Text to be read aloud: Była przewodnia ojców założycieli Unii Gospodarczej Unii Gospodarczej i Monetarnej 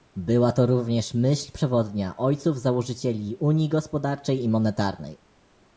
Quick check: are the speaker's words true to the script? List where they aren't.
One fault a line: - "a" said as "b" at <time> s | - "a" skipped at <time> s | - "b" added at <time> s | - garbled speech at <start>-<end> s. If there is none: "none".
- "to również myśl" added at 0.5 s
- "Unii Gospodarczej" skipped at 4.4 s